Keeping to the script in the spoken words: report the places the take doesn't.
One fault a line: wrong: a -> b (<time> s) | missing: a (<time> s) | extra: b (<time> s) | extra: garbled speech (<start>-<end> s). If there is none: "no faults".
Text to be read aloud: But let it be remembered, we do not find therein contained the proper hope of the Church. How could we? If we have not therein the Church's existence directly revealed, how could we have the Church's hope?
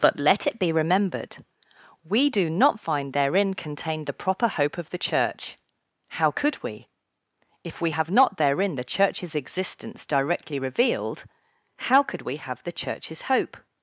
no faults